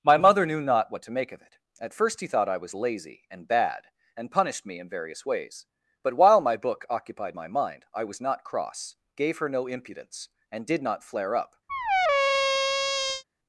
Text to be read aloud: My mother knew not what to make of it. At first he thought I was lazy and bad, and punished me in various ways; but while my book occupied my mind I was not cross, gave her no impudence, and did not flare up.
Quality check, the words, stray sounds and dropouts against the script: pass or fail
fail